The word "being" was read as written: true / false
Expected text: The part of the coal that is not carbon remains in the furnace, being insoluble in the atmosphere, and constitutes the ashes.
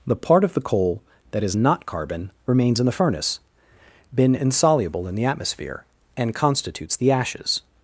false